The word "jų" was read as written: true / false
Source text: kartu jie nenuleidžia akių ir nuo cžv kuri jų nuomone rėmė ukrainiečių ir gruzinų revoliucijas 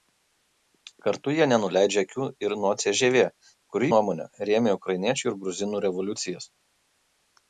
false